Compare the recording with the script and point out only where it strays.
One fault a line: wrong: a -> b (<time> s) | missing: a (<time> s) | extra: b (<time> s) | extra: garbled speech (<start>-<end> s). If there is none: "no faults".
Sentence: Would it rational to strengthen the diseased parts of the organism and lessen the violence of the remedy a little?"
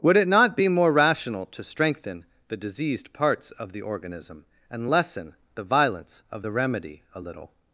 extra: not be more (0.3 s)